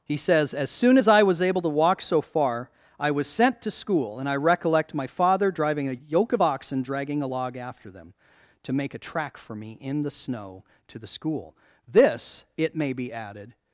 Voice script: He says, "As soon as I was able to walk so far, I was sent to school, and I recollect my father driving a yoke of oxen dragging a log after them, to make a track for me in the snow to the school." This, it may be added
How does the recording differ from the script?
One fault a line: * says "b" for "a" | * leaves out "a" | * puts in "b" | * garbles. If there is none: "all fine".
all fine